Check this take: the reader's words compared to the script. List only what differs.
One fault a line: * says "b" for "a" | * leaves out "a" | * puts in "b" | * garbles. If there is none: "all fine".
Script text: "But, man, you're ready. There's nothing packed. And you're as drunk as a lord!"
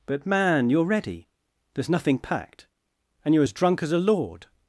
all fine